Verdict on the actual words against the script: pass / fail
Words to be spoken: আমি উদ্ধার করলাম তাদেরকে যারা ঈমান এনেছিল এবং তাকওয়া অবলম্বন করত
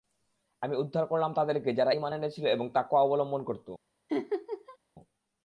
pass